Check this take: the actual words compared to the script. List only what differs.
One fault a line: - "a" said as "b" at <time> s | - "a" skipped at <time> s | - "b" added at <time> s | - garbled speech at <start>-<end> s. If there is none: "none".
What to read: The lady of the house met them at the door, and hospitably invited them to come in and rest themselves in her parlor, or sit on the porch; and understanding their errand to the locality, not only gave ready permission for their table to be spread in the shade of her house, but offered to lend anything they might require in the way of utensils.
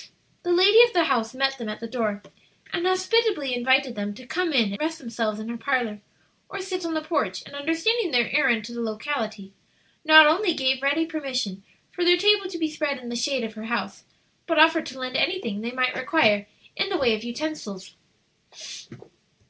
- "and" skipped at 4.7 s